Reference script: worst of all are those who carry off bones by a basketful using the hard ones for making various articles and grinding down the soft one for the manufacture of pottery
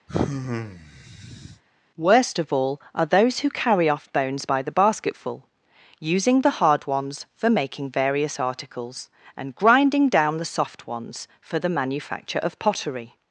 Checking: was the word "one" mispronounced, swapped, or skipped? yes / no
yes